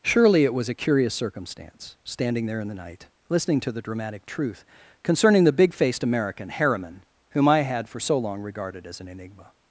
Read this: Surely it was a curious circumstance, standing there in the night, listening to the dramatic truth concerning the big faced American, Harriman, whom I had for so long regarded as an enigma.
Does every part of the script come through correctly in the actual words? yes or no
yes